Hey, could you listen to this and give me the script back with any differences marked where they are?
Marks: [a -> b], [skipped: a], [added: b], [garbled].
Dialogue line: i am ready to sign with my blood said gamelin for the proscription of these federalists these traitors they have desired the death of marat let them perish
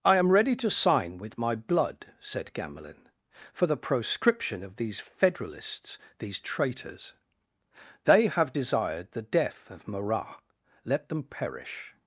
i am ready to sign with my blood said gamelin for the proscription of these federalists these traitors they have desired the death of marat let them perish